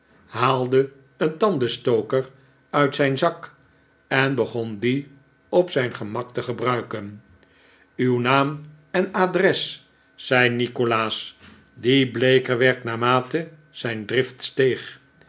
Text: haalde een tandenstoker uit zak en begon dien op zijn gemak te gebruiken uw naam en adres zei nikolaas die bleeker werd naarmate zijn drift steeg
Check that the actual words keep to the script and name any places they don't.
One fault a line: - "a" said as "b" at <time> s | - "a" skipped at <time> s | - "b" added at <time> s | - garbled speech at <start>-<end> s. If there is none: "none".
- "zijn" added at 2.9 s